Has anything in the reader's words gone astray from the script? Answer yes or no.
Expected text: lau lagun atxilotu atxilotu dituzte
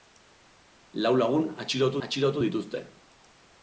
no